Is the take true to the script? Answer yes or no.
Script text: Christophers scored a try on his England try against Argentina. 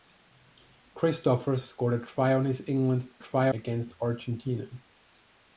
yes